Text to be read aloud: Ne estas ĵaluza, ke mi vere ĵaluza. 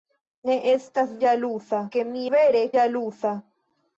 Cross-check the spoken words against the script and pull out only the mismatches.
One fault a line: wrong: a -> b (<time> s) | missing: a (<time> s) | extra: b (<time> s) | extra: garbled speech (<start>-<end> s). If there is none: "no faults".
no faults